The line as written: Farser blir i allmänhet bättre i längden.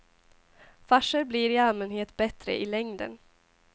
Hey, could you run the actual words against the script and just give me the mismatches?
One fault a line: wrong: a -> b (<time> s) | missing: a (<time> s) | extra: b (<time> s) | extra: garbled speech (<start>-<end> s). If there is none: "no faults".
no faults